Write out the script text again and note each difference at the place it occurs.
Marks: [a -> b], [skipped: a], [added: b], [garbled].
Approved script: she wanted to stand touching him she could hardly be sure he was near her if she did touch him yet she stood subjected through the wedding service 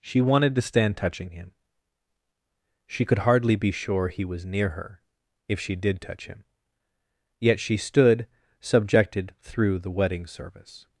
she wanted to stand touching him she could hardly be sure he was near her if she did touch him yet she stood subjected through the wedding service